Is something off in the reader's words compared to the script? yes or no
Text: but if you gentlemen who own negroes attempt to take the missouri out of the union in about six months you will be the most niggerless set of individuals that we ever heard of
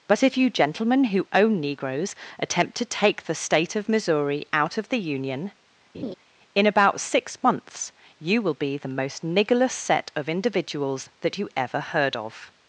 yes